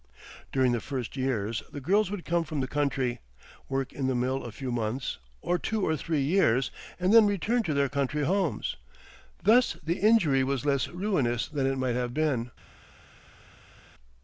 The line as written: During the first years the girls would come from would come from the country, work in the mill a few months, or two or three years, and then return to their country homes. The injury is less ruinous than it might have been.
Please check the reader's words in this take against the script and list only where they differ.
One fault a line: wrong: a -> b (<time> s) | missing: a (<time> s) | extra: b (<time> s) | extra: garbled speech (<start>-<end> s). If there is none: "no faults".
missing: would come from (2.6 s)
extra: Thus (9.4 s)
wrong: is -> was (10.4 s)